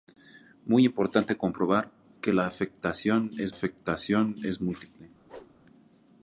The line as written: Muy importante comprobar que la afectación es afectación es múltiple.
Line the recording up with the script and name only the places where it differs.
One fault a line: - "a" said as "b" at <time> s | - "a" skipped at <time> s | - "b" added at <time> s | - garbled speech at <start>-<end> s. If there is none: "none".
none